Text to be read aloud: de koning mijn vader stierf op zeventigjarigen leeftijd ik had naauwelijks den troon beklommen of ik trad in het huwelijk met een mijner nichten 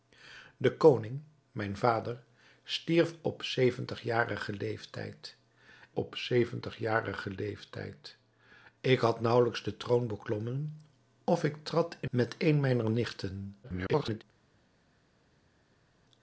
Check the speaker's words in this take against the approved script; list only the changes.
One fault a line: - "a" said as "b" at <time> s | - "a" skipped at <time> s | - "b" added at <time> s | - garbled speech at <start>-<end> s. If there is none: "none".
- "op zeventigjarigen leeftijd" added at 5.9 s
- "het huwelijk" skipped at 12.1 s
- garbled speech at 13.6-14.2 s